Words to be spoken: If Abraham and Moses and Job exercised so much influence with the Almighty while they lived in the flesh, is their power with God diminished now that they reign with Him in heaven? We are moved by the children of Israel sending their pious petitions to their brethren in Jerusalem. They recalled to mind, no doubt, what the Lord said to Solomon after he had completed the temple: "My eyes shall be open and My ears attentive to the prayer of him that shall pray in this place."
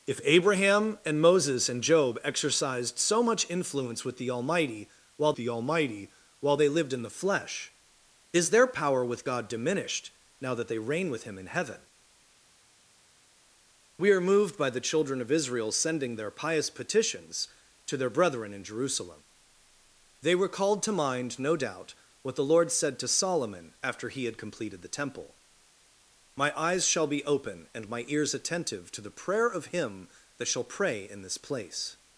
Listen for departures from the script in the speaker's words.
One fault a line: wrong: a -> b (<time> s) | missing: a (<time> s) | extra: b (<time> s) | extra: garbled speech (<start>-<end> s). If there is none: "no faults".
extra: the Almighty while (5.4 s)